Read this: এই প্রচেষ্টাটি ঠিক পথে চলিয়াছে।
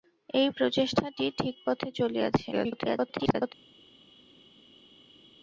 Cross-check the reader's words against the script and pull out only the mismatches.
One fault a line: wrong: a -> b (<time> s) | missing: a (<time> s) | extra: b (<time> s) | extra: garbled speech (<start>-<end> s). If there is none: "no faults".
extra: garbled speech (2.5-3.5 s)